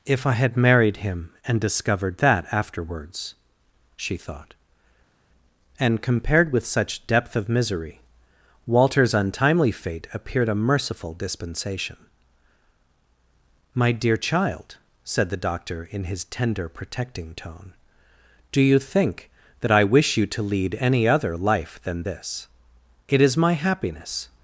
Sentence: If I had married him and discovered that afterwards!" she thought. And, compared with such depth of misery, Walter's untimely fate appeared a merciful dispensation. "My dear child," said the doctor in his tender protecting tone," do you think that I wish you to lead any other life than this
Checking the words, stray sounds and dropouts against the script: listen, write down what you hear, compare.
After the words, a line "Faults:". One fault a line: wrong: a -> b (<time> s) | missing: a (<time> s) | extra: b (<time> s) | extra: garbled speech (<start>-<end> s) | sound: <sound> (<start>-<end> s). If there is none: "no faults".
If I had married him and discovered that afterwards!" she thought. And, compared with such depth of misery, Walter's untimely fate appeared a merciful dispensation. "My dear child," said the doctor in his tender protecting tone," do you think that I wish you to lead any other life than this It is my happiness
Faults:
extra: It is my happiness (23.0 s)